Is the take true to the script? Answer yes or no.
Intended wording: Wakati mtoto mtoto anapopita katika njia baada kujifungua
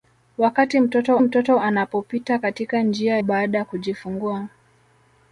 yes